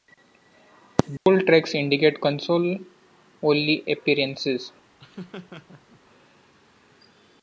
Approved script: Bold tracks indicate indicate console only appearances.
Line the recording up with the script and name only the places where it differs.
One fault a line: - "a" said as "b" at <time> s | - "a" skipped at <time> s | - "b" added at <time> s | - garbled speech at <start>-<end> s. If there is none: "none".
- "indicate" skipped at 2.2 s